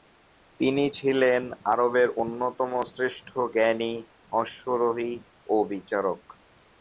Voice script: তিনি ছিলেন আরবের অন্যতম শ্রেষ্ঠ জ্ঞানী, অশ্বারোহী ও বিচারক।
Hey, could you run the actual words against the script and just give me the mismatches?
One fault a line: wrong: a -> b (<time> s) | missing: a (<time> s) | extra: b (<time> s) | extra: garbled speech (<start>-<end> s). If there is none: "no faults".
no faults